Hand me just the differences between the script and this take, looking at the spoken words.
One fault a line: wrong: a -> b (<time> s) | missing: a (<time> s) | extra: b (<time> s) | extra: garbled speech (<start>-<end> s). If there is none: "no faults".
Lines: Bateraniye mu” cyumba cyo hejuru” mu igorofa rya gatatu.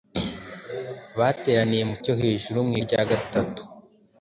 missing: cyumba (1.9 s)
missing: igorofa (2.7 s)